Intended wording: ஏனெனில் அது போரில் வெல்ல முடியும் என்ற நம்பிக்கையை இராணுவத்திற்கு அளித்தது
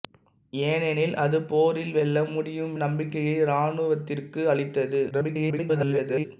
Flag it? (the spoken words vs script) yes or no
yes